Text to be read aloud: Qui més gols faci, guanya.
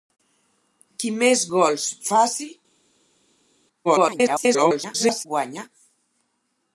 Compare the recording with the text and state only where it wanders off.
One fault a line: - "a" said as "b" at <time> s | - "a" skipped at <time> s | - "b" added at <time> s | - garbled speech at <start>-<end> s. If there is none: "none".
- garbled speech at 3.8-5.3 s